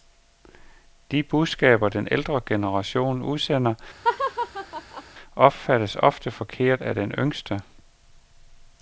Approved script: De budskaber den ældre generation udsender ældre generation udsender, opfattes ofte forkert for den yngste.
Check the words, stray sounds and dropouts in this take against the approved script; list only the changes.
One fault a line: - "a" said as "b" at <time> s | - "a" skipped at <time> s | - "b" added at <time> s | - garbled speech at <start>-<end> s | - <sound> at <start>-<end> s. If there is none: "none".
- "ældre generation udsender" skipped at 3.7 s
- laugh at 4.0-5.0 s
- "for" said as "af" at 6.8 s